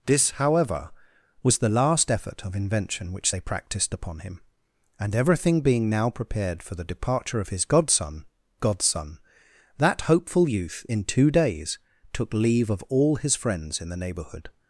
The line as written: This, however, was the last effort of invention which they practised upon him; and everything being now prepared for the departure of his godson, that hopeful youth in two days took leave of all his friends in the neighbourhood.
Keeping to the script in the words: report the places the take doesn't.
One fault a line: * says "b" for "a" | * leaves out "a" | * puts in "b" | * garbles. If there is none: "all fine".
* puts in "godson"